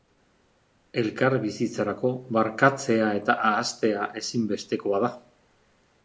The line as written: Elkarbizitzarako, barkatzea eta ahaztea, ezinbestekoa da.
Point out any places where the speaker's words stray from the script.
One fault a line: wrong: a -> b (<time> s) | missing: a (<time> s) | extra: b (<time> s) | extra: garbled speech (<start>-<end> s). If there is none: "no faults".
no faults